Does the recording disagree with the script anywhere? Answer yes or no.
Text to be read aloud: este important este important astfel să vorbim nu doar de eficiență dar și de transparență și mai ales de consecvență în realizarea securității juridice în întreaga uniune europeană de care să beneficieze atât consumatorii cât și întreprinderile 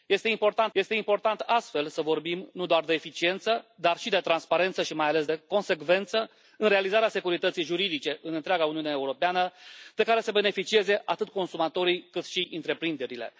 no